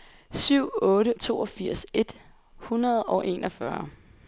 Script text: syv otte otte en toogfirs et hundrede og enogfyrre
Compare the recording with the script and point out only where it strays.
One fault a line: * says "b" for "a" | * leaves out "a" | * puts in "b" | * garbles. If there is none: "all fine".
* leaves out "otte en"